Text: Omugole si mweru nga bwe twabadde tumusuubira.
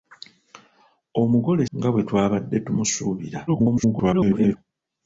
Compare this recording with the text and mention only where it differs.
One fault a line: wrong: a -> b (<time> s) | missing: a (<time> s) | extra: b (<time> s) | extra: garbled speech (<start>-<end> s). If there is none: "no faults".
missing: si mweru (1.6 s)
extra: garbled speech (3.5-4.6 s)